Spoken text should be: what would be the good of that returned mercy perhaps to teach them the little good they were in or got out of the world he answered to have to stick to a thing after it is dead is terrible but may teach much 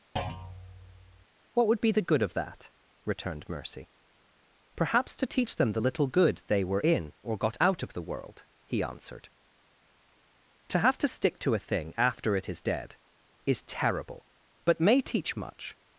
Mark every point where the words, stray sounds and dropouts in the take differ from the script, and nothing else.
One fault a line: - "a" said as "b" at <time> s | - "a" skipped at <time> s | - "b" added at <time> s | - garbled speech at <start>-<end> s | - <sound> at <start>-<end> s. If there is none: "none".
- thud at 0.2-1.3 s